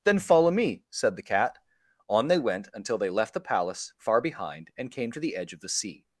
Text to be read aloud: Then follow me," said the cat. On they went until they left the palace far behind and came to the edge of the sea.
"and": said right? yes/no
yes